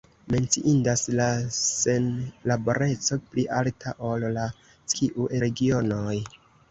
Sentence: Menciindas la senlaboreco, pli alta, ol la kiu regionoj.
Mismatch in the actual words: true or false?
false